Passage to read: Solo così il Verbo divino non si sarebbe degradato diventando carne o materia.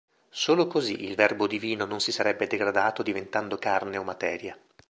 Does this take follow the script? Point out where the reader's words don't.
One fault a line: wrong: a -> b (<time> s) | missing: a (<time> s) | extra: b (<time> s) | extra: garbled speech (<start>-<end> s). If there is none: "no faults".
no faults